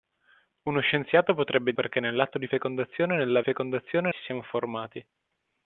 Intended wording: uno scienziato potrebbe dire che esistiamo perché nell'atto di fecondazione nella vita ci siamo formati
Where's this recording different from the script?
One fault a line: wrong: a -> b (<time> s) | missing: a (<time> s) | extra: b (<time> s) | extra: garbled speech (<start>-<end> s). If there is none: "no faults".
missing: dire che esistiamo (1.7 s)
wrong: vita -> fecondazione (3.4 s)